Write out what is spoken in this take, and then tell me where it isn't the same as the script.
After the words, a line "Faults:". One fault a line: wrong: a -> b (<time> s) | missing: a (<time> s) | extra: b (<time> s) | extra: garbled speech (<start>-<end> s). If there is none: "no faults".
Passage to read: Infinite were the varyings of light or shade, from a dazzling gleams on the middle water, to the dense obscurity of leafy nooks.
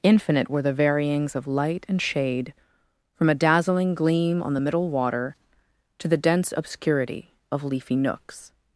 Infinite were the varyings of light and shade, from a dazzling gleam on the middle water, to the dense obscurity of leafy nooks.
Faults:
wrong: or -> and (1.9 s)
wrong: gleams -> gleam (3.9 s)